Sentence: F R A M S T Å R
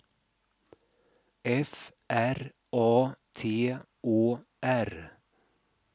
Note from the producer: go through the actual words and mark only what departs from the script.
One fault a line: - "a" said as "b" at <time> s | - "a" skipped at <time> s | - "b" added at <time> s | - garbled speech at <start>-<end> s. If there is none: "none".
- "M S" skipped at 3.1 s